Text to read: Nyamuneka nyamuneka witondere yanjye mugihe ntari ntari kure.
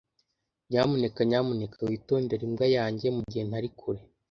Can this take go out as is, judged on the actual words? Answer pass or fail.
fail